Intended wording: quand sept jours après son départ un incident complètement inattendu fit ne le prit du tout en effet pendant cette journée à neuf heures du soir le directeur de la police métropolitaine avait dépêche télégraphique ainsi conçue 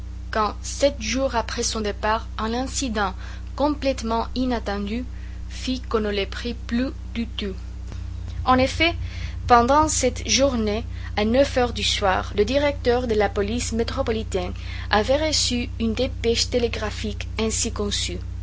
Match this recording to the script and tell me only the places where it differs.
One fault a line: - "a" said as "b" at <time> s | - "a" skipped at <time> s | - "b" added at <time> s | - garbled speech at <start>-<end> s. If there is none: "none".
- "qu'on" added at 5.8 s
- "plus" added at 6.5 s
- "reçu une" added at 15.3 s